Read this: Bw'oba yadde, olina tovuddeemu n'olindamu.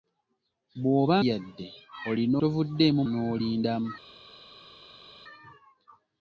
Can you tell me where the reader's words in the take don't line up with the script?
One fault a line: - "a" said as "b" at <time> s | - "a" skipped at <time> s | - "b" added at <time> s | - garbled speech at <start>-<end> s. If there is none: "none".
none